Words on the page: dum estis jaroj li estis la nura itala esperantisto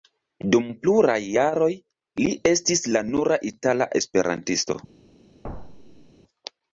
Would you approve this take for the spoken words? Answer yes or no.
no